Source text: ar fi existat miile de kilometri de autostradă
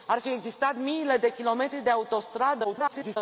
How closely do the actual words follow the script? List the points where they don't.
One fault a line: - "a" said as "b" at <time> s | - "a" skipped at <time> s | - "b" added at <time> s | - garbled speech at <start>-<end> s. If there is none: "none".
- garbled speech at 2.6-3.2 s